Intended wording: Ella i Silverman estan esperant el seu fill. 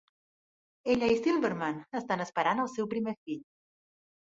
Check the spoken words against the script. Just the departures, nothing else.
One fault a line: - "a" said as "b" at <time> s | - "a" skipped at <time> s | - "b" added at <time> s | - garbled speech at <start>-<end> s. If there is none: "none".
- "primer" added at 3.0 s